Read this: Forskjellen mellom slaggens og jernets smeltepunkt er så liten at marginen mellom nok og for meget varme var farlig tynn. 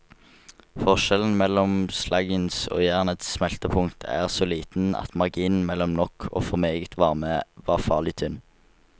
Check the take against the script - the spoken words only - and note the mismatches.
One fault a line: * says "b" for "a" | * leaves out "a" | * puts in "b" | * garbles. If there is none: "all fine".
all fine